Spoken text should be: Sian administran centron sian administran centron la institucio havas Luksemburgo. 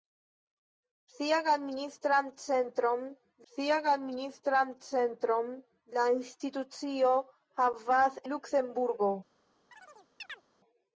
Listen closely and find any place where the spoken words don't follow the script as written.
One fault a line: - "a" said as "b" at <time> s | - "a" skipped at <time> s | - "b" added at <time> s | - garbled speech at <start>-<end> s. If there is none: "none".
none